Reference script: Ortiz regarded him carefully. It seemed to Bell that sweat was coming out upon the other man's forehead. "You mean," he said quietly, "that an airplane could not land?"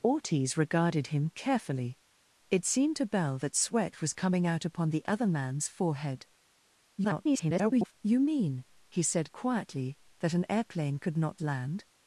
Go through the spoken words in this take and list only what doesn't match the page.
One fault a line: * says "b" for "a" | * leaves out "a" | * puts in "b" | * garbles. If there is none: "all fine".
* garbles